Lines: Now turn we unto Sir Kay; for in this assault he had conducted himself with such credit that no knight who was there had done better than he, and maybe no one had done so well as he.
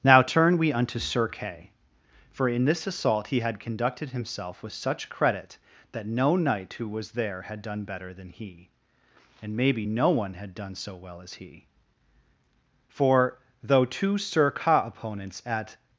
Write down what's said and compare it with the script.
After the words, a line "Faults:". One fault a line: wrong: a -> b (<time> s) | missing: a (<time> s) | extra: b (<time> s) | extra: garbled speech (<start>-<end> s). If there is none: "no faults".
Now turn we unto Sir Kay; for in this assault he had conducted himself with such credit that no knight who was there had done better than he, and maybe no one had done so well as he. For, though two sir Ka opponents at
Faults:
extra: For though two sir Ka opponents at (12.9 s)